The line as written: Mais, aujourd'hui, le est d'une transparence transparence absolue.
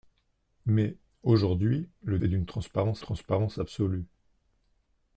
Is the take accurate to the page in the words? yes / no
yes